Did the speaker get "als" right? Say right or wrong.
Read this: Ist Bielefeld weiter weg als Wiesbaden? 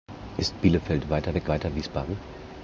wrong